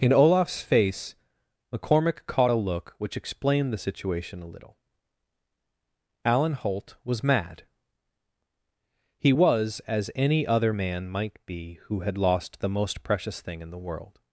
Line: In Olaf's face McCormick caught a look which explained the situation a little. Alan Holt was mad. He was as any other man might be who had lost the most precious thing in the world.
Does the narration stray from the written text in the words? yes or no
no